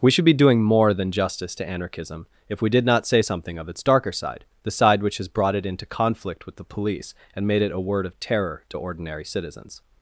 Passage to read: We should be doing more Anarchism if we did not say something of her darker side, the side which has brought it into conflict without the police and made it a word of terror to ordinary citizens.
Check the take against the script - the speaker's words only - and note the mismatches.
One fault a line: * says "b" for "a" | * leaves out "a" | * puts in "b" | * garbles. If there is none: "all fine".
* puts in "than justice to"
* says "its" for "her"
* says "with" for "without"